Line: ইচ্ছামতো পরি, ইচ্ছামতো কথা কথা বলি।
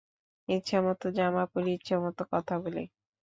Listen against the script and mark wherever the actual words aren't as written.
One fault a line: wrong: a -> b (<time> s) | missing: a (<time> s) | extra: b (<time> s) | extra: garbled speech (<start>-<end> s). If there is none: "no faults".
extra: জামা (1.2 s)
missing: কথা (2.5 s)